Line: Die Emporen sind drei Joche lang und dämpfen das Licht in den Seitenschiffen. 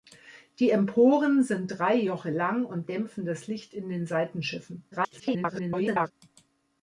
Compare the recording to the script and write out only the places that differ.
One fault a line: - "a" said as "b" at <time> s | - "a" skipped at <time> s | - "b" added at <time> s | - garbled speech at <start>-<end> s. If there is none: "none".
- garbled speech at 4.9-6.1 s